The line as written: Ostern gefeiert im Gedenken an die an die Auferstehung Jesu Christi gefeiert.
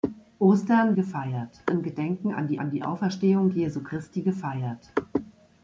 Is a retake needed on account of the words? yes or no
no